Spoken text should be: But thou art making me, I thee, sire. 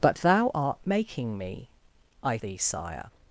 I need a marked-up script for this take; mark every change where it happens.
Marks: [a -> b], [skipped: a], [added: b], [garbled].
But thou art making me, I thee, sire.